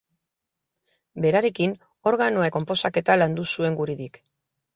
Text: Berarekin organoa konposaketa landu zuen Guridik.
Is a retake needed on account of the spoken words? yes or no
no